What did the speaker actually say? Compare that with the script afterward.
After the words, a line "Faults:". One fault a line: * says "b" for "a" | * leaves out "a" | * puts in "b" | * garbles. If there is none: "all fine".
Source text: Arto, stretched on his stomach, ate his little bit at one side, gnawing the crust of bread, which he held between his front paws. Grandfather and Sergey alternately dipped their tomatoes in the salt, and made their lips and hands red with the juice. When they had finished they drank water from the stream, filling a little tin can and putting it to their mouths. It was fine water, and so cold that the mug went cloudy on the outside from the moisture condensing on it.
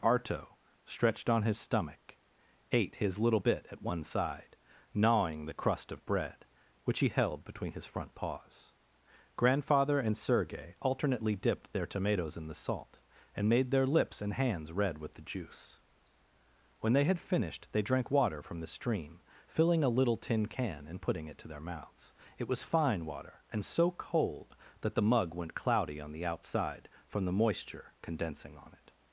Arto, stretched on his stomach, ate his little bit at one side, gnawing the crust of bread, which he held between his front paws. Grandfather and Sergey alternately dipped their tomatoes in the salt, and made their lips and hands red with the juice. When they had finished they drank water from the stream, filling a little tin can and putting it to their mouths. It was fine water, and so cold that the mug went cloudy on the outside from the moisture condensing on it.
Faults:
all fine